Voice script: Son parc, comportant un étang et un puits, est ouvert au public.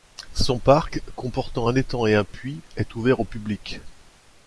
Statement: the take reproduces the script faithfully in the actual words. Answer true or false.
true